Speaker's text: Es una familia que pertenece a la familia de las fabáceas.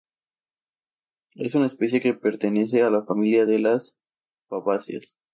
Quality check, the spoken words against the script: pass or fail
fail